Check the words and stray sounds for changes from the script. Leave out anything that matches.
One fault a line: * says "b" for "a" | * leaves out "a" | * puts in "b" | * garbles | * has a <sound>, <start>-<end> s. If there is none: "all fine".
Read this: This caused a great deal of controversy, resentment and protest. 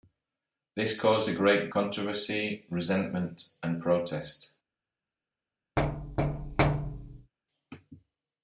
* leaves out "deal of"
* has a thud, 5.8-7.3 s